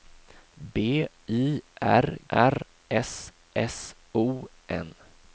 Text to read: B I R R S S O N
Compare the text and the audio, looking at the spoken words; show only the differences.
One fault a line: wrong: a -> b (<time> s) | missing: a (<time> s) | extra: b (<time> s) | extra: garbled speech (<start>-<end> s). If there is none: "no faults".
no faults